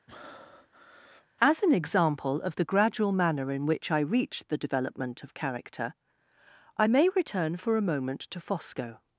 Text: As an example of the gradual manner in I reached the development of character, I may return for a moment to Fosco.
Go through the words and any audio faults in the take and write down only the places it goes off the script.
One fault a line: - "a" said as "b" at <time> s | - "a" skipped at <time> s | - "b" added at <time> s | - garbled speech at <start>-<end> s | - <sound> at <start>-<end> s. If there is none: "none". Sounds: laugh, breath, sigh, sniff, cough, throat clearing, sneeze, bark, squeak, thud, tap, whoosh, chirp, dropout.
- breath at 0.1-1.3 s
- "which" added at 3.7 s